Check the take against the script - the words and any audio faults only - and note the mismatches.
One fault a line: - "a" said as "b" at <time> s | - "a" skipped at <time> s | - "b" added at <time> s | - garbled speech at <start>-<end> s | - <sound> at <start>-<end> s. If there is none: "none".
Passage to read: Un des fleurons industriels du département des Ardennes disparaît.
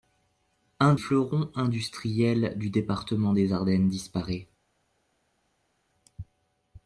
- "des" skipped at 0.9 s